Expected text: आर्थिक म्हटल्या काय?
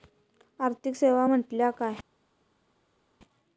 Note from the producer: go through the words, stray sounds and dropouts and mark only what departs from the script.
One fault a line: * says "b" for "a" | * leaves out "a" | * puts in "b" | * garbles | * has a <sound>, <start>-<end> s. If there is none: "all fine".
* puts in "सेवा"